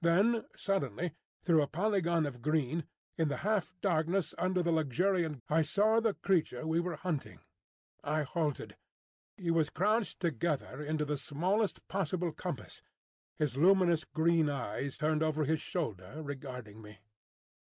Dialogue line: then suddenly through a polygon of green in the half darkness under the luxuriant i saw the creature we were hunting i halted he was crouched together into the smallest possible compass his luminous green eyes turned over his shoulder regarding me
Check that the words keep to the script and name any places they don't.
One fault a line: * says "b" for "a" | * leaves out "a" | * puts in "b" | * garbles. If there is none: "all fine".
all fine